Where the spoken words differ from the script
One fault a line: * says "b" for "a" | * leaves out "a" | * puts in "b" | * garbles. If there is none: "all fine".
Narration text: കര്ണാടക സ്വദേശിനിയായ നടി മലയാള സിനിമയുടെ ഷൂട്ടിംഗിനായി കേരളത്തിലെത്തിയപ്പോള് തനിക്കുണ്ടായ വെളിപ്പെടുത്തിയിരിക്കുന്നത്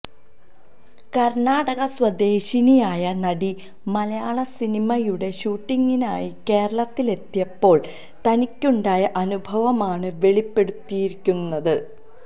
* puts in "അനുഭവമാണ്"